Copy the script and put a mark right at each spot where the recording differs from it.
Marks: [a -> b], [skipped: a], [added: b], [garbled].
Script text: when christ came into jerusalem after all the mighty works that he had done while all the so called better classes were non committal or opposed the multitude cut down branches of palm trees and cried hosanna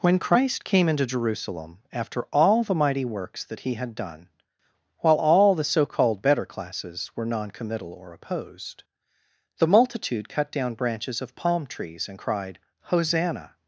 when christ came into jerusalem after all the mighty works that he had done while all the so called better classes were non committal or opposed the multitude cut down branches of palm trees and cried hosanna